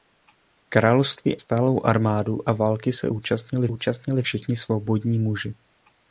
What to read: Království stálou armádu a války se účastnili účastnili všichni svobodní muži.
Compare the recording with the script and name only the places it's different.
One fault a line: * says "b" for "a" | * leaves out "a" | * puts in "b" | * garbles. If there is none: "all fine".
all fine